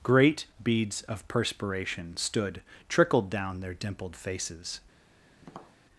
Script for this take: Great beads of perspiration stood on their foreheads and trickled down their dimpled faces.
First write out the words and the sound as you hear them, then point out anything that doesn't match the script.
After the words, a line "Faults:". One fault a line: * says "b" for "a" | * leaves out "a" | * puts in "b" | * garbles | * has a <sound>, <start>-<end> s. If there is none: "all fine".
Great beads of perspiration stood trickled down their dimpled faces.
Faults:
* leaves out "on their foreheads and"
* has a tap, 5.4-5.8 s